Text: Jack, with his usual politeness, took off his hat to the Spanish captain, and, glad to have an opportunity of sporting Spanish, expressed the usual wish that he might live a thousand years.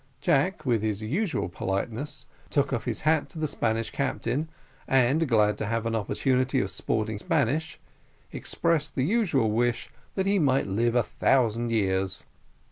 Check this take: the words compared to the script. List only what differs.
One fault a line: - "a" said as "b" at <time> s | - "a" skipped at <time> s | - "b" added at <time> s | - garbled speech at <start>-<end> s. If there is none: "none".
none